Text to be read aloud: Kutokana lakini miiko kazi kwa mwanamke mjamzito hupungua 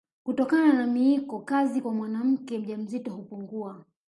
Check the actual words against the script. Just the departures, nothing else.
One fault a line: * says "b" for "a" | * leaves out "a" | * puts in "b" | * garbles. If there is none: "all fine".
* says "na" for "lakini"